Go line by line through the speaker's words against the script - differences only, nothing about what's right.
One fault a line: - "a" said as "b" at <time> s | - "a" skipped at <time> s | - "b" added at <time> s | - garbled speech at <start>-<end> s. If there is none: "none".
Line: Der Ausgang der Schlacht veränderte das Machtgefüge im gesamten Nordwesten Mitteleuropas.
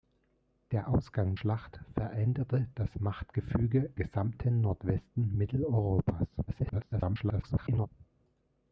- "der" skipped at 1.4 s
- "im" skipped at 3.9 s
- garbled speech at 6.5-7.9 s